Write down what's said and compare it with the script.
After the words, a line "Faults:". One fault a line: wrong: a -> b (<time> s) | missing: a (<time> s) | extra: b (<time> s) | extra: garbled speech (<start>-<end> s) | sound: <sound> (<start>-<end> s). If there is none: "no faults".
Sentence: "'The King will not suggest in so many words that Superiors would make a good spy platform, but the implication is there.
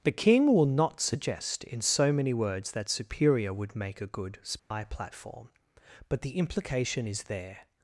"'The King will not suggest in so many words that Superior would make a good spy platform, but the implication is there.
Faults:
wrong: Superiors -> Superior (2.9 s)
sound: dropout (4.6-4.7 s)